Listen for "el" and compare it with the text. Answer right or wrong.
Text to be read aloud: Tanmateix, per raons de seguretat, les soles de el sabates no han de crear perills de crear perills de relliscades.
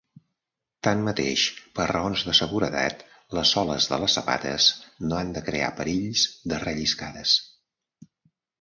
wrong